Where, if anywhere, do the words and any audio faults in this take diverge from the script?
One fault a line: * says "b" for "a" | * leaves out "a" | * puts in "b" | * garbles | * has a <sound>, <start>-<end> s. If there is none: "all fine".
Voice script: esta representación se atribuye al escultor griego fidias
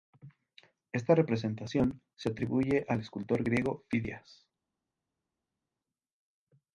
all fine